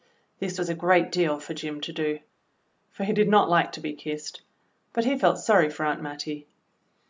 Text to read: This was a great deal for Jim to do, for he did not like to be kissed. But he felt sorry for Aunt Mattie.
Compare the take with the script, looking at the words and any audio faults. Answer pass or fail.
pass